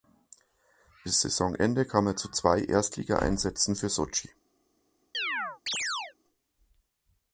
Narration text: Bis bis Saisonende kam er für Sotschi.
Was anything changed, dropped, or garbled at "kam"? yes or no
no